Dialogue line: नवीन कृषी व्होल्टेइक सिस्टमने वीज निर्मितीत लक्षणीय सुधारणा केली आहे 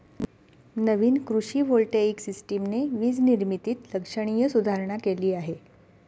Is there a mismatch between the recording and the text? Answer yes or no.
no